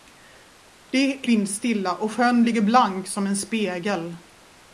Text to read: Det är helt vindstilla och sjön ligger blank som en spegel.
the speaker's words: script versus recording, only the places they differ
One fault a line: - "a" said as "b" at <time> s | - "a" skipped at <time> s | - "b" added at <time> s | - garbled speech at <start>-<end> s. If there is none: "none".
- "helt" skipped at 1.3 s